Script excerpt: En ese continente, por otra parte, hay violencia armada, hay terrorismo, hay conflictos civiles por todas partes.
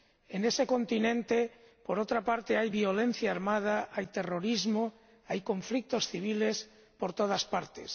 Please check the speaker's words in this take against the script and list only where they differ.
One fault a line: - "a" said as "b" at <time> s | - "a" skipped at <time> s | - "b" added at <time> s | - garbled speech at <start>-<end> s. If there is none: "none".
none